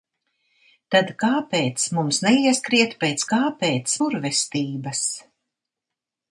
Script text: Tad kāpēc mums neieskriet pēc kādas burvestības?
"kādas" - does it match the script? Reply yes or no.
no